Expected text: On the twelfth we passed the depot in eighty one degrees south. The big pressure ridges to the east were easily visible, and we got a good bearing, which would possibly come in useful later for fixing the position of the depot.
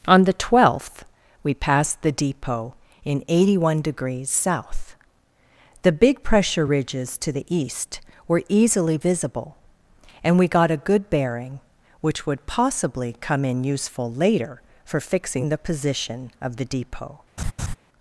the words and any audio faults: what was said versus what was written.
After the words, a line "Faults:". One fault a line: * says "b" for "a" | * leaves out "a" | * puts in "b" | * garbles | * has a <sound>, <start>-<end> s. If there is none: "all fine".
On the twelfth we passed the depot in eighty one degrees south. The big pressure ridges to the east were easily visible, and we got a good bearing, which would possibly come in useful later for fixing the position of the depot.
Faults:
* has a laugh, 17.4-17.8 s